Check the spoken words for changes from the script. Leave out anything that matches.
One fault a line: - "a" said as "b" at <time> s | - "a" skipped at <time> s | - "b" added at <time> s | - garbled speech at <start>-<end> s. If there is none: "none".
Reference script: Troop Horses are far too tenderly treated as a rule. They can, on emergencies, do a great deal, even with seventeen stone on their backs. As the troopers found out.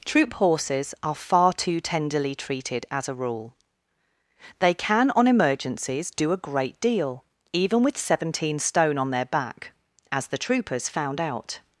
- "backs" said as "back" at 9.2 s